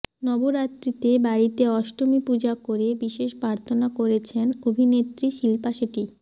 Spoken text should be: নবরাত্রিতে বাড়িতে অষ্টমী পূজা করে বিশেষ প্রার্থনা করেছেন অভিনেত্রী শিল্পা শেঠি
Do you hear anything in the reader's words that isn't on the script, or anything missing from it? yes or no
no